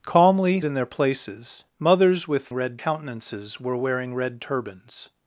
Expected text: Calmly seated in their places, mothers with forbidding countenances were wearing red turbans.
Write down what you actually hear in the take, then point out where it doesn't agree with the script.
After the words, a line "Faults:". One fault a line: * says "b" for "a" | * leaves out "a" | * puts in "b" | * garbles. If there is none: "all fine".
Calmly in their places, mothers with red countenances were wearing red turbans.
Faults:
* leaves out "seated"
* says "red" for "forbidding"